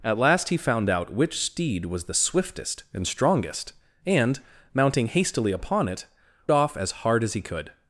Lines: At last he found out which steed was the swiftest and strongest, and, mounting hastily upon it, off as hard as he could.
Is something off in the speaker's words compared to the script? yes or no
no